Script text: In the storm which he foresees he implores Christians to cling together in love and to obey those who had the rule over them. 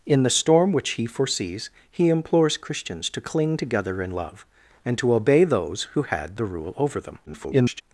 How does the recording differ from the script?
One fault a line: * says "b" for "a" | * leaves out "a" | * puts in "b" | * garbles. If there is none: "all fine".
* garbles